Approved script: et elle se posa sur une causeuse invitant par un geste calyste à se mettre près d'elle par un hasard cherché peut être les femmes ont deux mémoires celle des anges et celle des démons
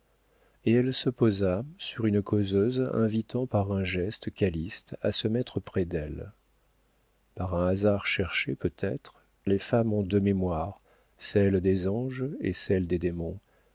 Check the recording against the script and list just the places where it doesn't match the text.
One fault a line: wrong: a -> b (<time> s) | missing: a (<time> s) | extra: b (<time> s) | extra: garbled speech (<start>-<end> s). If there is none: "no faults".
no faults